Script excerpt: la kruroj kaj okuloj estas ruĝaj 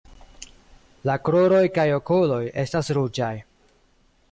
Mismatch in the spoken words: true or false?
false